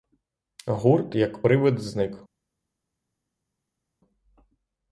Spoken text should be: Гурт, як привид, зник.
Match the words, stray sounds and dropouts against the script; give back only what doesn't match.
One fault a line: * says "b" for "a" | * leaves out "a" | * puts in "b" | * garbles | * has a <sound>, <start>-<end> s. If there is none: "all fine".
all fine